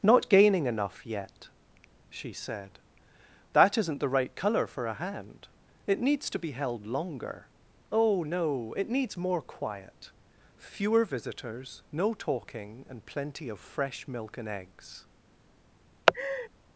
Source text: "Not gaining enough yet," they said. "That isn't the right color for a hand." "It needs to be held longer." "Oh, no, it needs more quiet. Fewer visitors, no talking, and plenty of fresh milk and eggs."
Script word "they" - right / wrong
wrong